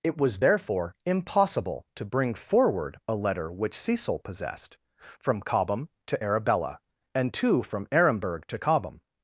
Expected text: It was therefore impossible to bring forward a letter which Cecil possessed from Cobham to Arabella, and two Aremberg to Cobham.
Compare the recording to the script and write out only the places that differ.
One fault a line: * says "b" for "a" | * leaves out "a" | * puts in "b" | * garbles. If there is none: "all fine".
* puts in "from"